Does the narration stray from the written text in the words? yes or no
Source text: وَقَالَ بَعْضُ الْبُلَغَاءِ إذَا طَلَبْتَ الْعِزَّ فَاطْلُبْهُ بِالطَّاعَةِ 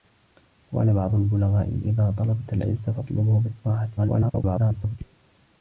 yes